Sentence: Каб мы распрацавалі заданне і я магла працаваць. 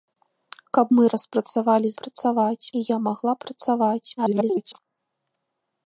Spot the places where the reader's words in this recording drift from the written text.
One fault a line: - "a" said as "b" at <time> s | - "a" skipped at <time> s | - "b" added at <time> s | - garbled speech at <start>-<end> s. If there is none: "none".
- "заданне" said as "працаваць" at 2.0 s
- garbled speech at 4.2-4.8 s